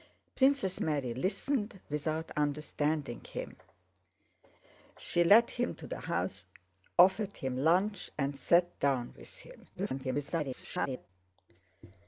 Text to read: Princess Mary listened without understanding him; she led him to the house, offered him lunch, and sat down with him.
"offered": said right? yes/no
yes